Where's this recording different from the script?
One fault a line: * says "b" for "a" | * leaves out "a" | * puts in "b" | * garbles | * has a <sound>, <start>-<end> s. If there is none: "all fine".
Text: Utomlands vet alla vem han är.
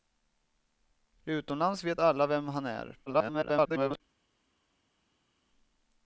* garbles